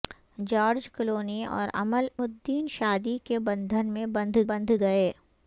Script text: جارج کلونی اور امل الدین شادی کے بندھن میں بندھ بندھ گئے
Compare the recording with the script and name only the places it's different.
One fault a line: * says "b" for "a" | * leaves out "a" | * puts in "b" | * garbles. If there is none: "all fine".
all fine